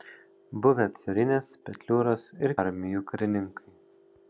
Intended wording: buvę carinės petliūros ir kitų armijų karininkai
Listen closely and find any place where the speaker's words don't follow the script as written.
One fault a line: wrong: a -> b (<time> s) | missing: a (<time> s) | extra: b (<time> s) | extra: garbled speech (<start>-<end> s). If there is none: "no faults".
missing: kitų (2.5 s)